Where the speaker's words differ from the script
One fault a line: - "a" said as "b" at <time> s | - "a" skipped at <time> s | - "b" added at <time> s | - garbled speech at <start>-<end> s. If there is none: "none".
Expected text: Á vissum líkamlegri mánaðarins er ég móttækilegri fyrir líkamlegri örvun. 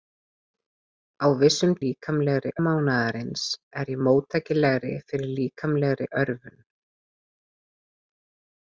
none